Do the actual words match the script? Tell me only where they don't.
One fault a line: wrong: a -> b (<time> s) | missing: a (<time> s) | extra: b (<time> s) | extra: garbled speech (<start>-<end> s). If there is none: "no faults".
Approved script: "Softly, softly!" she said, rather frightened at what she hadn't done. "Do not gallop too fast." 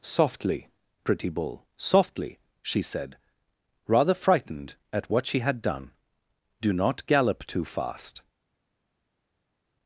extra: pretty bull (1.0 s)
wrong: hadn't -> had (5.4 s)